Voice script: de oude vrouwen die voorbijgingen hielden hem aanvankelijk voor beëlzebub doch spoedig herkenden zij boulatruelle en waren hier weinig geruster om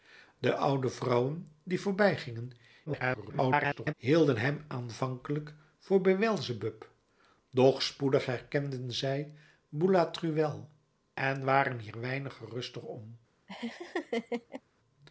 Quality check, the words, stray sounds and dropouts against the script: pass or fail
fail